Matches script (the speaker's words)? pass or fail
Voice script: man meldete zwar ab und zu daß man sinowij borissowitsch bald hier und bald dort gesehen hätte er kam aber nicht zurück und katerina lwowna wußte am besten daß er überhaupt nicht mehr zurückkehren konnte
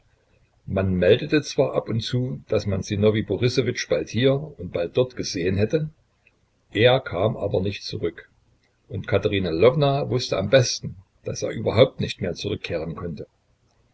pass